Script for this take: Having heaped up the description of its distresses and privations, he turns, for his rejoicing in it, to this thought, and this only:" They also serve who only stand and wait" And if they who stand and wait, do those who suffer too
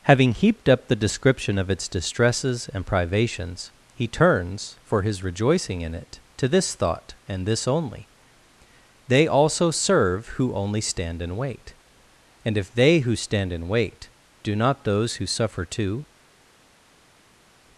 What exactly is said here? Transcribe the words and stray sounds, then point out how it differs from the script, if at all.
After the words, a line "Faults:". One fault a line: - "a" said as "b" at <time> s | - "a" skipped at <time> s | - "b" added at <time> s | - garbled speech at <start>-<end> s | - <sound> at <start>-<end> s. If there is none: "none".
Having heaped up the description of its distresses and privations, he turns, for his rejoicing in it, to this thought, and this only:" They also serve who only stand and wait" And if they who stand and wait, do not those who suffer too
Faults:
- "not" added at 14.6 s